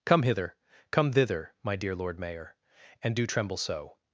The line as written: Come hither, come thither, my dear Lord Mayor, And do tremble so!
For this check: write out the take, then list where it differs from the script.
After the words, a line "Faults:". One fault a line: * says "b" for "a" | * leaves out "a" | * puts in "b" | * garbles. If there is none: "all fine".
Come hither, come thither, my dear Lord Mayor, And do tremble so!
Faults:
all fine